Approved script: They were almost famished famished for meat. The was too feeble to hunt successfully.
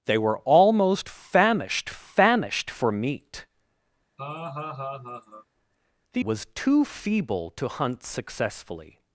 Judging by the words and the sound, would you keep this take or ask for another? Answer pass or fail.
fail